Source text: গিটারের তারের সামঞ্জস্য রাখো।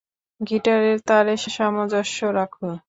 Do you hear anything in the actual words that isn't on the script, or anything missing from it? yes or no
no